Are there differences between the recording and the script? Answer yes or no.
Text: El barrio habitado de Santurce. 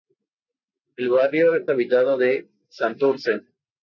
no